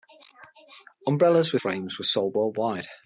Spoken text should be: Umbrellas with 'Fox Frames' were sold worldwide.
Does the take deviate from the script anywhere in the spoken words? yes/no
yes